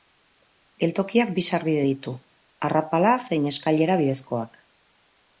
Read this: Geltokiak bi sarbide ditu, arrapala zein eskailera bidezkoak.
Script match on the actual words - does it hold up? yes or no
yes